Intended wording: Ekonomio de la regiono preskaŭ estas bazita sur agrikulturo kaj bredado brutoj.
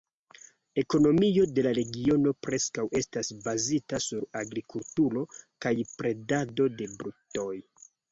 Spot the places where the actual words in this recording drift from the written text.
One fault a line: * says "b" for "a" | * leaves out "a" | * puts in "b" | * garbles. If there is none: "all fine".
* puts in "de"